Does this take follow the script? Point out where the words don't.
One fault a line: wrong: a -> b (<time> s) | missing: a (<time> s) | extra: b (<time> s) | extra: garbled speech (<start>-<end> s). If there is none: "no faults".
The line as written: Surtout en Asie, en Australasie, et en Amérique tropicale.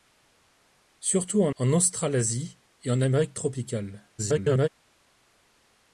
missing: Asie (1.6 s)
extra: garbled speech (4.2-4.7 s)